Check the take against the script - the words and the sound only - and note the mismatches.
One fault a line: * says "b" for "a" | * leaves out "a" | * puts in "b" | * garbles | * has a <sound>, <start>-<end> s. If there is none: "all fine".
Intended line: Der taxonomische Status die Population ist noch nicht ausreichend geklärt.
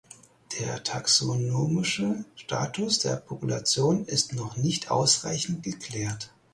* says "der" for "die"